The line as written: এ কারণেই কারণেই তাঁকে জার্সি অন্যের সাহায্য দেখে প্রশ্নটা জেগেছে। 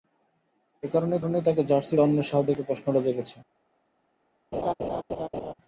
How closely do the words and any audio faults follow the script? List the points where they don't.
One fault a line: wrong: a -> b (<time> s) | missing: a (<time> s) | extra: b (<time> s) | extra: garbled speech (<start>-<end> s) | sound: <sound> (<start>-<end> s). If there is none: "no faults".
sound: laugh (4.5-5.5 s)